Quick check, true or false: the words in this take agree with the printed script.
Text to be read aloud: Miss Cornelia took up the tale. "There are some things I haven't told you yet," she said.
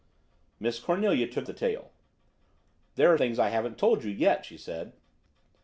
false